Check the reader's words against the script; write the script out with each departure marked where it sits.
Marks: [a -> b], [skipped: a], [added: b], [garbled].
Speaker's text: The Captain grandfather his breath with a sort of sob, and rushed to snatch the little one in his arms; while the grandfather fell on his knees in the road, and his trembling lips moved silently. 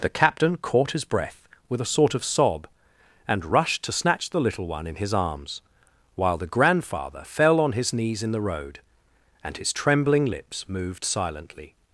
The Captain [grandfather -> caught] his breath with a sort of sob, and rushed to snatch the little one in his arms; while the grandfather fell on his knees in the road, and his trembling lips moved silently.